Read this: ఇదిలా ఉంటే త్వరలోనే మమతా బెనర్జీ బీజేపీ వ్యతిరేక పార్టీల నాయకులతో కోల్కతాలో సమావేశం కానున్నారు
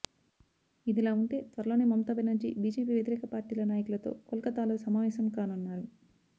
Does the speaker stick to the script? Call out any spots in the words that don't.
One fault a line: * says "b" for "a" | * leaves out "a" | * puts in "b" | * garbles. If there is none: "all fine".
all fine